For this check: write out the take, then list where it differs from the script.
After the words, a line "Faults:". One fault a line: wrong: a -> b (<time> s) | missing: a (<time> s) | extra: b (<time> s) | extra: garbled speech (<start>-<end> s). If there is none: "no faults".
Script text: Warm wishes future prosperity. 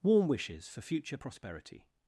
Warm wishes for future prosperity.
Faults:
extra: for (0.7 s)